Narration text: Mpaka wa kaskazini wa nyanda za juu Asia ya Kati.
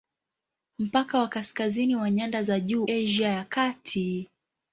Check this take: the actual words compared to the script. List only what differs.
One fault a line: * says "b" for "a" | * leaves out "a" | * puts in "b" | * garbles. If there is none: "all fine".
all fine